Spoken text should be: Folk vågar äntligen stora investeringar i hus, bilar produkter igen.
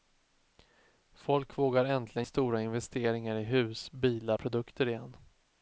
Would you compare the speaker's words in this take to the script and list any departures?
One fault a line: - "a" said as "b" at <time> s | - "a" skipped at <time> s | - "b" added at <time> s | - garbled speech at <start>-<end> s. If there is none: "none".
none